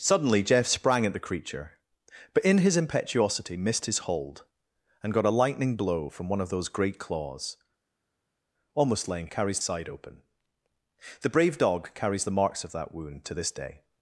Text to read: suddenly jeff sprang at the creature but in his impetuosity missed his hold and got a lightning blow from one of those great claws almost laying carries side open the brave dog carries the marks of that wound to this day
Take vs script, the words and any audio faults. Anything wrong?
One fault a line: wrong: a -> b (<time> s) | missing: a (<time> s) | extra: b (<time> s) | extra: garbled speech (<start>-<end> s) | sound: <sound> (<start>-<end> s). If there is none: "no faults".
no faults